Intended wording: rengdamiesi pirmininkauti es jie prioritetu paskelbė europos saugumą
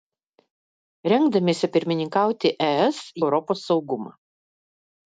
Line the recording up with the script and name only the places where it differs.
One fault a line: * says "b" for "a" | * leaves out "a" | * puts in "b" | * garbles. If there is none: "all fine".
* leaves out "jie prioritetu paskelbė"